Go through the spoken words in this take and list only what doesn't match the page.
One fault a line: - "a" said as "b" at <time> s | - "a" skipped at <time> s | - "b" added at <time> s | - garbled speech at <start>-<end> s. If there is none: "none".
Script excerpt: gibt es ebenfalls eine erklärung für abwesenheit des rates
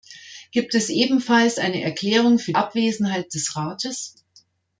none